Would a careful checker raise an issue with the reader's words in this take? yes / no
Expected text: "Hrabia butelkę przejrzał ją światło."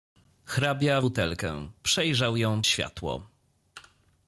no